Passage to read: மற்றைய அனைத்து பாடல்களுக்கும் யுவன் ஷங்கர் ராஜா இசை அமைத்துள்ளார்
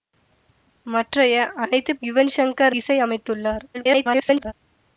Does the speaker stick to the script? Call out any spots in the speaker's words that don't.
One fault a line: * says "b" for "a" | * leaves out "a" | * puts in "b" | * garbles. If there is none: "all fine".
* leaves out "பாடல்களுக்கும்"
* leaves out "ராஜா"
* garbles